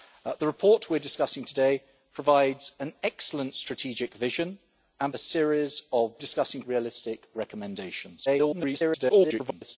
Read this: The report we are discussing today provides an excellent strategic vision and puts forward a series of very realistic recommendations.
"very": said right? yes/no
no